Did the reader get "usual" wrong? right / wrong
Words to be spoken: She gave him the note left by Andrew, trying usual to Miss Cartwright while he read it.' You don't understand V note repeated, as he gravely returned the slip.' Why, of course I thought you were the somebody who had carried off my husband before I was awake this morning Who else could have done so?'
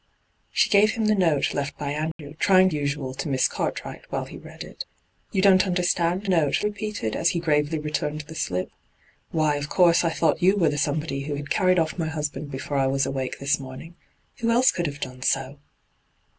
right